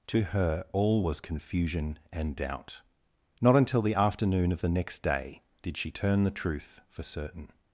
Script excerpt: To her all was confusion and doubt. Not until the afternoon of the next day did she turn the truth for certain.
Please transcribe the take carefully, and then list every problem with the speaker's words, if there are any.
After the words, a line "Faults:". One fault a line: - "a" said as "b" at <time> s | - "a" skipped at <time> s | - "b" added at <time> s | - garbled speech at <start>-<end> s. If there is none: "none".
To her all was confusion and doubt. Not until the afternoon of the next day did she turn the truth for certain.
Faults:
none